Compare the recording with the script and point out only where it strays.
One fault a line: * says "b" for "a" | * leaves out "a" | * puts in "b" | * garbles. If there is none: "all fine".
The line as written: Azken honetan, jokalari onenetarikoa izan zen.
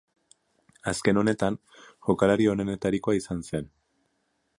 all fine